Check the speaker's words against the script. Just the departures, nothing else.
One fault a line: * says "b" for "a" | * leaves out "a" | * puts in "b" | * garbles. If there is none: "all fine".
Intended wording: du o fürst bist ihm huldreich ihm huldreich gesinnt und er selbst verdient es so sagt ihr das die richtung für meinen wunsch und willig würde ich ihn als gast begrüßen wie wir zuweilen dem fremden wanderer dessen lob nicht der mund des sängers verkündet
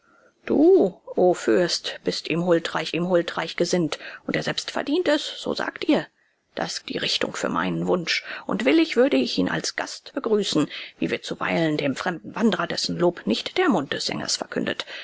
all fine